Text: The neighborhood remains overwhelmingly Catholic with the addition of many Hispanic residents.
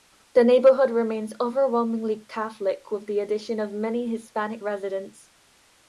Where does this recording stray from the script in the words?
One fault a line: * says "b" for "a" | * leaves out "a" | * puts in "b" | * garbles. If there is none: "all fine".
all fine